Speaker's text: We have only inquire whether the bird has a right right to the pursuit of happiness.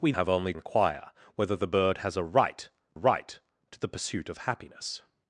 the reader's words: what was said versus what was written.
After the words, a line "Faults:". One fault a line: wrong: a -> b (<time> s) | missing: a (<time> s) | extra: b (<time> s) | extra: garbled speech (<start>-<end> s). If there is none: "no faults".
We have only inquire whether the bird has a right right to the pursuit of happiness.
Faults:
no faults